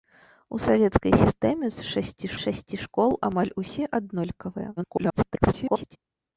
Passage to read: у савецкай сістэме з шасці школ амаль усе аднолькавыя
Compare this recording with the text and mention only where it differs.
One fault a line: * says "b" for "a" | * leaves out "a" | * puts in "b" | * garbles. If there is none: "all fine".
* puts in "шасці"
* garbles